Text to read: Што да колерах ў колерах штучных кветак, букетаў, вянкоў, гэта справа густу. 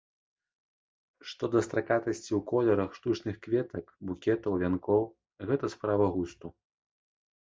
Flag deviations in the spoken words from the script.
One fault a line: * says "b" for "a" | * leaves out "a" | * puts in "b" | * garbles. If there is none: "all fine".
* says "стракатасці" for "колерах"